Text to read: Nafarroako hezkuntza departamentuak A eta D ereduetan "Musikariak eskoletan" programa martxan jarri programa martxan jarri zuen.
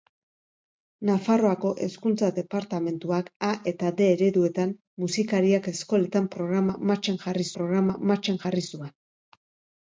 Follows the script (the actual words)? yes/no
yes